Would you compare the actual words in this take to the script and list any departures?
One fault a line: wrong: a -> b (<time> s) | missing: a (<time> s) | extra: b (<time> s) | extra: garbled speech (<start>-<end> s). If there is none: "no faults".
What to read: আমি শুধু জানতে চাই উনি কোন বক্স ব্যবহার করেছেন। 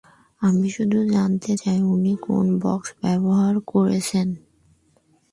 no faults